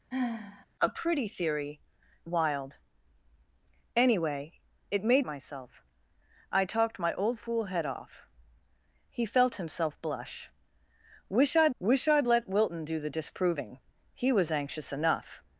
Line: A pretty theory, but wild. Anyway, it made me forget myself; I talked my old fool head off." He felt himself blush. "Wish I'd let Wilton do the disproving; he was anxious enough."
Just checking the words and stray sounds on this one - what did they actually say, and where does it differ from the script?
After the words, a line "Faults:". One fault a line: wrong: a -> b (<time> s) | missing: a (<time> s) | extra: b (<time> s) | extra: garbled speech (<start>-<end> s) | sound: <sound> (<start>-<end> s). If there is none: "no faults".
A pretty theory, wild. Anyway, it made myself; I talked my old fool head off." He felt himself blush. "Wish I'd wish I'd let Wilton do the disproving; he was anxious enough."
Faults:
sound: sigh (0.1-0.7 s)
missing: but (1.8 s)
missing: me forget (5.2 s)
extra: wish I'd (11.8 s)